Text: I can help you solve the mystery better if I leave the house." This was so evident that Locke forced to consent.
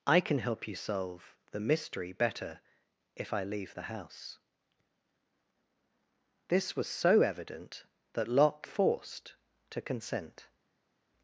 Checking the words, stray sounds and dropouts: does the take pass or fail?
pass